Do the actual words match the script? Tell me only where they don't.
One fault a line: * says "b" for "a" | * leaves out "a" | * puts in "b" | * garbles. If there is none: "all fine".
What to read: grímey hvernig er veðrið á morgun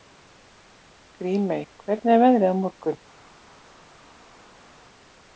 all fine